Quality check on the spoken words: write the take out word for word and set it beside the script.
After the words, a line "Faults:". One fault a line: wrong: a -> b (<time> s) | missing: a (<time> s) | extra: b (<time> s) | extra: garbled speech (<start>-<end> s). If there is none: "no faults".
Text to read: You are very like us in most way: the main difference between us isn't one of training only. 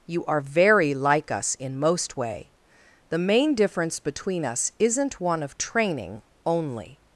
You are very like us in most way: the main difference between us isn't one of training only.
Faults:
no faults